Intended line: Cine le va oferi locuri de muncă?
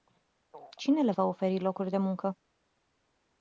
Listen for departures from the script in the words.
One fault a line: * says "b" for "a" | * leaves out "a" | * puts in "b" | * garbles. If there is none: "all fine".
all fine